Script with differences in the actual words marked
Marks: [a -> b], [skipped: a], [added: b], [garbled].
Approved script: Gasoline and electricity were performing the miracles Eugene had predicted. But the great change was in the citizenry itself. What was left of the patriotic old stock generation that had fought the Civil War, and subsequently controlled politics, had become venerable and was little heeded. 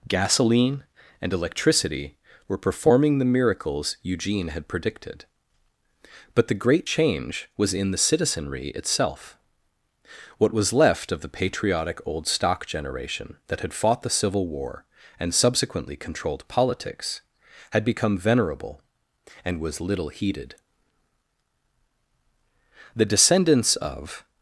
Gasoline and electricity were performing the miracles Eugene had predicted. But the great change was in the citizenry itself. What was left of the patriotic old stock generation that had fought the Civil War, and subsequently controlled politics, had become venerable and was little heeded. [added: The descendants of]